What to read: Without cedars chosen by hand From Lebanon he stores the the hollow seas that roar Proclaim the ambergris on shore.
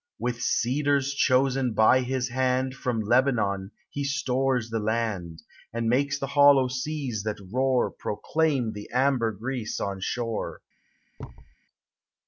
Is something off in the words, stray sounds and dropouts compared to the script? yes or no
yes